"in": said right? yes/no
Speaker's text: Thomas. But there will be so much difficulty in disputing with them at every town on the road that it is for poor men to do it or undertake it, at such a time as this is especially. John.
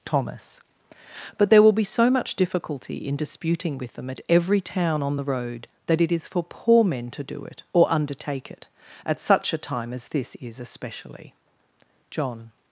yes